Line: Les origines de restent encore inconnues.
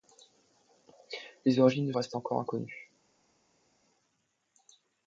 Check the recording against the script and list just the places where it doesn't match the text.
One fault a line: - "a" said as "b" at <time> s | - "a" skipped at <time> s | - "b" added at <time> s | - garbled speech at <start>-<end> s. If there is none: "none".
none